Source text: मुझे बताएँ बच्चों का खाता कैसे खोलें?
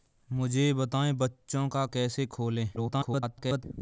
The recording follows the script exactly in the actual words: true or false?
false